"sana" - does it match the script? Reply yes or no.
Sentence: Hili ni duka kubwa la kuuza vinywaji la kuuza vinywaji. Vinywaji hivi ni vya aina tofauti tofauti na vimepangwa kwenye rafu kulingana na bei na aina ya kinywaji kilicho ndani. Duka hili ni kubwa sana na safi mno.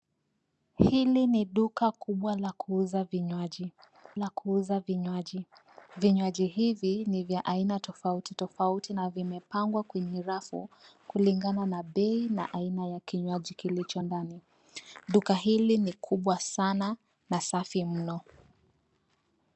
yes